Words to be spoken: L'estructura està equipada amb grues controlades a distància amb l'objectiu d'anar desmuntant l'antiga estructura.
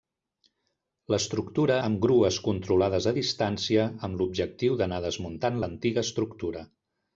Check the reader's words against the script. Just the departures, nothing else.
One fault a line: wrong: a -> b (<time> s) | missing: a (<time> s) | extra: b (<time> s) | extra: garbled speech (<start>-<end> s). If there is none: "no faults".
missing: està equipada (1.8 s)